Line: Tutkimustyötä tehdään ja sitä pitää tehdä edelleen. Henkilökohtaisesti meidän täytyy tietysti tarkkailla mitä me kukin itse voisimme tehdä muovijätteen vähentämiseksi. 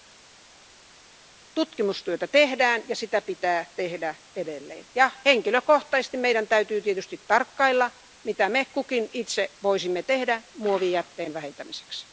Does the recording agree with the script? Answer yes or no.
yes